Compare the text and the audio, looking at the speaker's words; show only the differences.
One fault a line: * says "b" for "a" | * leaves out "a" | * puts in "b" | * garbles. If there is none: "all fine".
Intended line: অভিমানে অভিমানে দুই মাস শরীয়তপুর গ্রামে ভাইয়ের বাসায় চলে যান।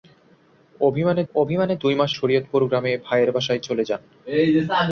all fine